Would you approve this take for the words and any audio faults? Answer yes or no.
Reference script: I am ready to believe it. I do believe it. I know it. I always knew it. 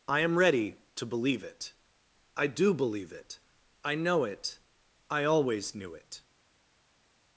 yes